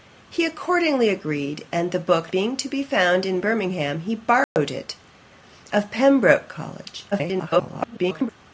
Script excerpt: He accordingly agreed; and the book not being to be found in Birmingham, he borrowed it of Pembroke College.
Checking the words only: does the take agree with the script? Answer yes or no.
no